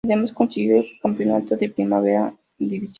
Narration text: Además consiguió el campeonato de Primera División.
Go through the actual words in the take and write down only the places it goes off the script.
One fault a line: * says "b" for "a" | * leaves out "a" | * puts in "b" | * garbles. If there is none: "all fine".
all fine